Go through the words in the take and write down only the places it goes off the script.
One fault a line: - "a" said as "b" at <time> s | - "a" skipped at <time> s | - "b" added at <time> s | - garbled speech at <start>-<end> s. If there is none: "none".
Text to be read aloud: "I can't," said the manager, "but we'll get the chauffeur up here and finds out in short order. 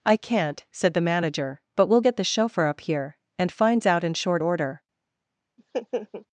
none